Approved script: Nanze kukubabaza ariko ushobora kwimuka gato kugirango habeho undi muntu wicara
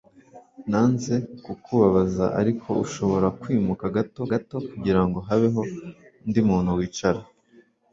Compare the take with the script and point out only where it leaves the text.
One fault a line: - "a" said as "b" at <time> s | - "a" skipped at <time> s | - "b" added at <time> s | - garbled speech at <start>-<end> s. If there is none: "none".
- "gato" added at 4.3 s